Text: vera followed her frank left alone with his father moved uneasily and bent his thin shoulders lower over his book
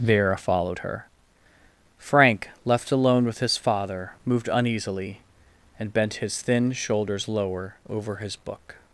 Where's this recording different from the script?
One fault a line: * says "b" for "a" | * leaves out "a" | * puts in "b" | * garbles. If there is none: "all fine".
all fine